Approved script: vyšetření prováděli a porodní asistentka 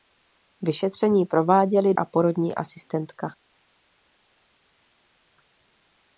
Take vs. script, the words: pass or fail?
pass